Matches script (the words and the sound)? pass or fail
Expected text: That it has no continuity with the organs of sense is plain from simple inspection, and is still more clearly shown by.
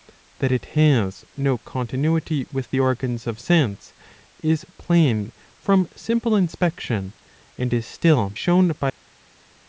fail